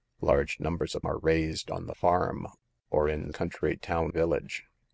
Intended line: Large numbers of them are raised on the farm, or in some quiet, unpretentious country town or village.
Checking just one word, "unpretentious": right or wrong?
wrong